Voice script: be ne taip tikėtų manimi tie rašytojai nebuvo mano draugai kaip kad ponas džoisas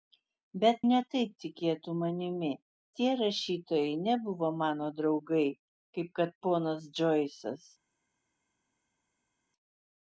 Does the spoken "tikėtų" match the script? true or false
true